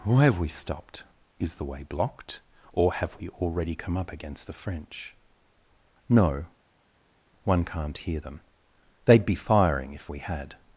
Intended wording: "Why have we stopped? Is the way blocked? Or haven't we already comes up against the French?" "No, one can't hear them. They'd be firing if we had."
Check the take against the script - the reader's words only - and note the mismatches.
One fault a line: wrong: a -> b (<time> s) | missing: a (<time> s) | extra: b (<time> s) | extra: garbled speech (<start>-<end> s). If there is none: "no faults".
wrong: haven't -> have (2.9 s)
wrong: comes -> come (3.8 s)